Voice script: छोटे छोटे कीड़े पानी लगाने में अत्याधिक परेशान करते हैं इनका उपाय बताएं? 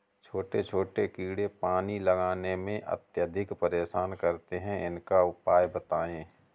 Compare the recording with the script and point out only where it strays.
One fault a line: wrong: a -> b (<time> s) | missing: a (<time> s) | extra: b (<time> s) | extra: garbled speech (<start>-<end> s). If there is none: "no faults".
no faults